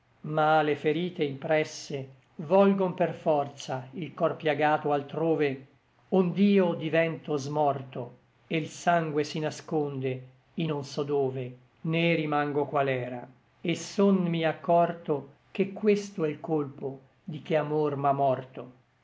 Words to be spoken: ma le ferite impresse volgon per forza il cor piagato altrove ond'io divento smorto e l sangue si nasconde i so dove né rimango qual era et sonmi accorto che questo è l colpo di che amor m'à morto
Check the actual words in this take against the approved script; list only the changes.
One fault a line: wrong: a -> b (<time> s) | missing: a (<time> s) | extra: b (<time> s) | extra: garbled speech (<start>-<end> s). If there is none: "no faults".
extra: non (10.6 s)